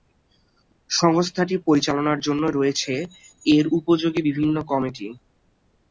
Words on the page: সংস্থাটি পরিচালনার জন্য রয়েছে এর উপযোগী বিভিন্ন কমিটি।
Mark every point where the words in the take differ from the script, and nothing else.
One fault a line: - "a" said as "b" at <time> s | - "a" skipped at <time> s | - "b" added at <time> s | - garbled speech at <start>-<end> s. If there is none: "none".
none